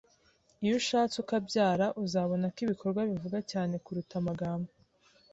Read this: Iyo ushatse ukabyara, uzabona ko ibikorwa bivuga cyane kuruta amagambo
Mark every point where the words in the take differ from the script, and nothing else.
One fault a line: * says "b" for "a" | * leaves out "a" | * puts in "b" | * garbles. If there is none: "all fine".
all fine